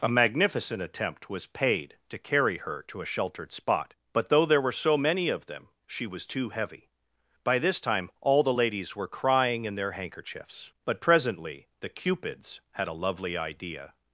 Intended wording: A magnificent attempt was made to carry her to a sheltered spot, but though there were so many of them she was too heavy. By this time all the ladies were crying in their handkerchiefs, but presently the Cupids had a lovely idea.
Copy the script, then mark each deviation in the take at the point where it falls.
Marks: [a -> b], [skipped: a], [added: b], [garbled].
A magnificent attempt was [made -> paid] to carry her to a sheltered spot, but though there were so many of them she was too heavy. By this time all the ladies were crying in their handkerchiefs, but presently the Cupids had a lovely idea.